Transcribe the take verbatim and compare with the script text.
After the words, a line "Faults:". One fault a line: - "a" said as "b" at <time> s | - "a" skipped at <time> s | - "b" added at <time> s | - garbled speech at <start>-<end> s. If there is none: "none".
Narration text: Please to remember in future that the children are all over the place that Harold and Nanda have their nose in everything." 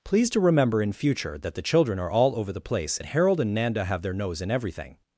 Please to remember in future that the children are all over the place that Harold and Nanda have their nose in everything."
Faults:
none